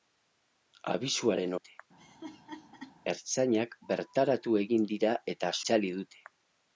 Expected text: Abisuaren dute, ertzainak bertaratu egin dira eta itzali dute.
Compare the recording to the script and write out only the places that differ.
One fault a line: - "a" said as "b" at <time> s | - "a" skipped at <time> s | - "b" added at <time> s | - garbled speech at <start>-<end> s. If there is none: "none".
none